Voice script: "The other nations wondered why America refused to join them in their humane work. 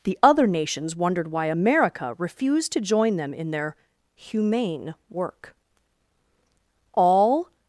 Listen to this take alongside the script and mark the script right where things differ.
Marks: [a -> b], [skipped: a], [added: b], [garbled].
"The other nations wondered why America refused to join them in their humane work. [added: All]